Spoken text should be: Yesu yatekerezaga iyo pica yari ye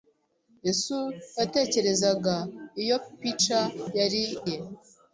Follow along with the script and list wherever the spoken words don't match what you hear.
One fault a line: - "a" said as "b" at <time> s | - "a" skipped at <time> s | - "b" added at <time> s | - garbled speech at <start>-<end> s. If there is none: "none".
none